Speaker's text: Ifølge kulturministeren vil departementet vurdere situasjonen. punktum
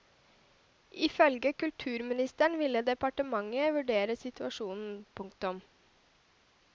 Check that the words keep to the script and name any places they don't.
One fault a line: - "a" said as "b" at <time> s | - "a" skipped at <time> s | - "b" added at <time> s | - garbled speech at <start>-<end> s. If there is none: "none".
none